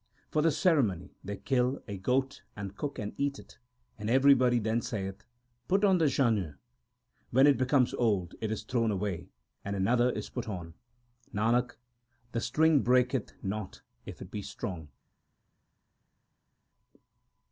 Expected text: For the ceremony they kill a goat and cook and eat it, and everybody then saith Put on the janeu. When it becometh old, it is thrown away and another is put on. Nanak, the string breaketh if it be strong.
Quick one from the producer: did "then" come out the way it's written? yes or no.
yes